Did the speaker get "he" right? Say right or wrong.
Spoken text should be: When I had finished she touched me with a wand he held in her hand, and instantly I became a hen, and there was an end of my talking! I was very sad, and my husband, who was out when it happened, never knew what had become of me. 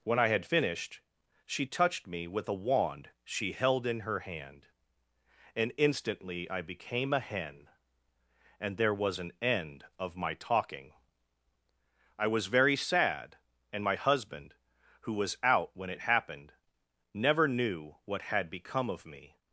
wrong